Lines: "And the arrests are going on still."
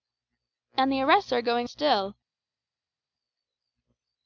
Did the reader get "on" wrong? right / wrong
wrong